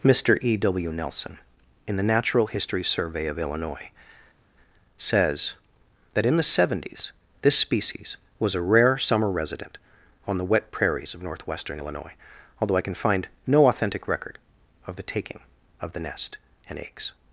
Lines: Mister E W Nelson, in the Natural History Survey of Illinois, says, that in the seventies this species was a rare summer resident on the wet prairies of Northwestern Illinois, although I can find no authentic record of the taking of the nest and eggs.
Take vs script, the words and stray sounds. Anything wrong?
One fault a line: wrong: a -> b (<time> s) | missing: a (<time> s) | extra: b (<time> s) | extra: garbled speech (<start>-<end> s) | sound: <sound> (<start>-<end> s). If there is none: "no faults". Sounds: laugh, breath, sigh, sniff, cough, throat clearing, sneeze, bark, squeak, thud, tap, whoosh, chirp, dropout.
no faults